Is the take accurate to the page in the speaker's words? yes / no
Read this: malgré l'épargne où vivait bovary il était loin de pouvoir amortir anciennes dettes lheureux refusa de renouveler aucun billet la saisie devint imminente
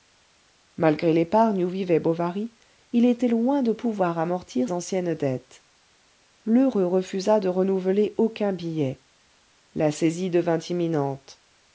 yes